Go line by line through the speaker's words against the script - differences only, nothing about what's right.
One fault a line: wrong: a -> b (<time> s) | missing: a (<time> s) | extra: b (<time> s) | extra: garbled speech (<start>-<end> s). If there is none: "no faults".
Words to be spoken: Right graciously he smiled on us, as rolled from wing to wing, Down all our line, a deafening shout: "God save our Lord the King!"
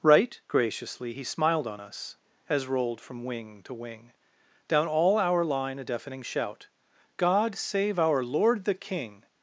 no faults